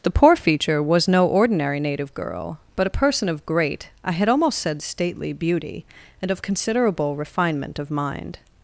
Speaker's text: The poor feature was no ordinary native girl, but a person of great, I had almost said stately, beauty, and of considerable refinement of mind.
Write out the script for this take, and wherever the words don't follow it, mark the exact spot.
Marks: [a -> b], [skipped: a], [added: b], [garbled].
The poor feature was no ordinary native girl, but a person of great, I had almost said stately, beauty, and of considerable refinement of mind.